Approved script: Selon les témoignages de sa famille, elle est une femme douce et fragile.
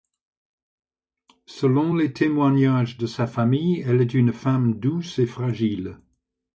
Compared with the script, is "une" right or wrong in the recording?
right